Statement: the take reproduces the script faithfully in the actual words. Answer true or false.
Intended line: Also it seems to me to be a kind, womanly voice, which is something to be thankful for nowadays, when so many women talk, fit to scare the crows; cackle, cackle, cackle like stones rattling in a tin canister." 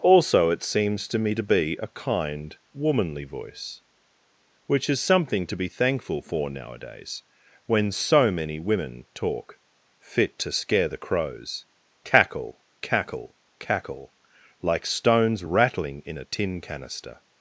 true